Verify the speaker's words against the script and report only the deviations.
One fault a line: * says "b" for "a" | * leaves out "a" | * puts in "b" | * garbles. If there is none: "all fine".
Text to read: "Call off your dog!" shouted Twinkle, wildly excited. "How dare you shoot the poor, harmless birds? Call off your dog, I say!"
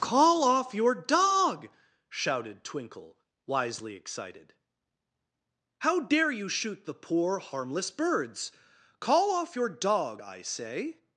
* says "wisely" for "wildly"